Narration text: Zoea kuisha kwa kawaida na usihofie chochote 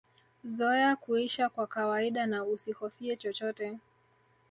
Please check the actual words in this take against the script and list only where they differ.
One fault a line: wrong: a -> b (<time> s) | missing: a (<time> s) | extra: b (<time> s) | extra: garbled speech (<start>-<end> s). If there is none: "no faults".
no faults